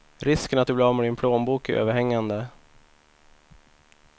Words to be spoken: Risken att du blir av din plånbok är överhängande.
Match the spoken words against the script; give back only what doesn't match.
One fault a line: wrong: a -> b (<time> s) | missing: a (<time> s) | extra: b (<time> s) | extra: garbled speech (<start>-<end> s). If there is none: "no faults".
extra: med (1.0 s)